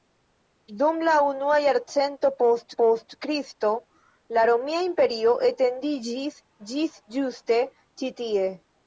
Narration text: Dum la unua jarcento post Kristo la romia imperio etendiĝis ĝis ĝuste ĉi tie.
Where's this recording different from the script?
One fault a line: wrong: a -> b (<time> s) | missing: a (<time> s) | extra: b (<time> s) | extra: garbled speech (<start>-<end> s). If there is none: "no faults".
extra: post (2.8 s)